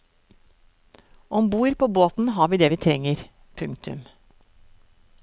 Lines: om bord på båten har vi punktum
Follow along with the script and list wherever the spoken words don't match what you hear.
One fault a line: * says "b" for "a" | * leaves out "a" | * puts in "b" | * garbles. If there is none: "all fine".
* puts in "det vi trenger"